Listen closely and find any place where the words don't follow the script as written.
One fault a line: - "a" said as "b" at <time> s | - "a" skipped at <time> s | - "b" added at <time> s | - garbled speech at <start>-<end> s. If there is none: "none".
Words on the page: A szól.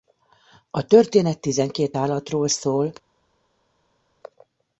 - "történet tizenkét állatról" added at 0.8 s